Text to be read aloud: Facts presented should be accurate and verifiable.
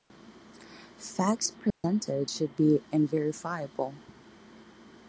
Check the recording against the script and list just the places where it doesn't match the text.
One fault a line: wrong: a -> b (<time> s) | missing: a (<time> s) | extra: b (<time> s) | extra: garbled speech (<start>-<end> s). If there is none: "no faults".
missing: accurate (2.8 s)